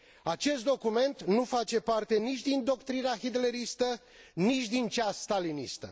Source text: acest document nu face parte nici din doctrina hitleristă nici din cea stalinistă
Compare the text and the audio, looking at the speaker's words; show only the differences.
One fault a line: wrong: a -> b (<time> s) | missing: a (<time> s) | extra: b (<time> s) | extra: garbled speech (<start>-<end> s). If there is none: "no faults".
no faults